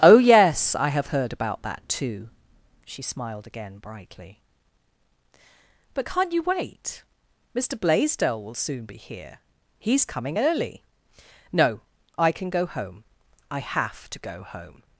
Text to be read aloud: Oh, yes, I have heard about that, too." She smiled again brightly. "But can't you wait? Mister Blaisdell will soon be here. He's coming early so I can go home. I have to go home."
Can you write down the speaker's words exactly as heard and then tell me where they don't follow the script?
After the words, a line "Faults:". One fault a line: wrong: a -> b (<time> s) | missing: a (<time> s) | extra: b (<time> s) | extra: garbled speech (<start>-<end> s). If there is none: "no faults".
Oh, yes, I have heard about that, too." She smiled again brightly. "But can't you wait? Mister Blaisdell will soon be here. He's coming early no I can go home. I have to go home."
Faults:
wrong: so -> no (11.5 s)